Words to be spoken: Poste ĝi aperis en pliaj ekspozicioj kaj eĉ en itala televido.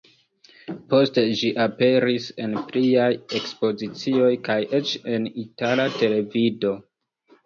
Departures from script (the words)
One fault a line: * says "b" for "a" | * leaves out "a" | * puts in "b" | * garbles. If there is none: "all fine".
all fine